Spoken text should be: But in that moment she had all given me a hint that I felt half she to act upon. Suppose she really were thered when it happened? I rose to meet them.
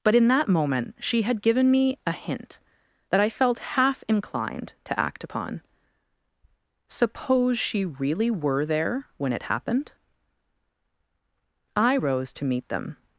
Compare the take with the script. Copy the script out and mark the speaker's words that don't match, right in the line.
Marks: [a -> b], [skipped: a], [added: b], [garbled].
But in that moment she had [skipped: all] given me a hint that I felt half [she -> inclined] to act upon. Suppose she really were [thered -> there] when it happened? I rose to meet them.